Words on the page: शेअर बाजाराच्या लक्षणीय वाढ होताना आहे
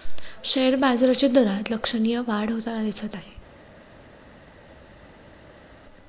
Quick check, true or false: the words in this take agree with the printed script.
false